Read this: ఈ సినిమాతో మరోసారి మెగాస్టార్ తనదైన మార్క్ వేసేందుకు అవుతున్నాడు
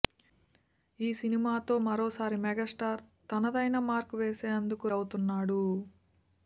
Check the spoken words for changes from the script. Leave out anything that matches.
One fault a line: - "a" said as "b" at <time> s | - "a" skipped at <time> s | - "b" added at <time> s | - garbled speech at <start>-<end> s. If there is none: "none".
none